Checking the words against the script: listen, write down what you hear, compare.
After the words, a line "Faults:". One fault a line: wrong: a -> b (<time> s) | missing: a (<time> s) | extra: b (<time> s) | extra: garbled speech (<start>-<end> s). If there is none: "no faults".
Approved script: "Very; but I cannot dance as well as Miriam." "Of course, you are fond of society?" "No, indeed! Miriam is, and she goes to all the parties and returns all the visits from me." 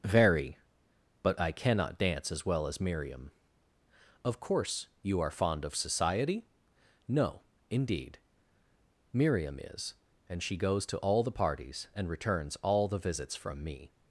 "Very; but I cannot dance as well as Miriam." "Of course, you are fond of society?" "No, indeed! Miriam is, and she goes to all the parties and returns all the visits from me."
Faults:
no faults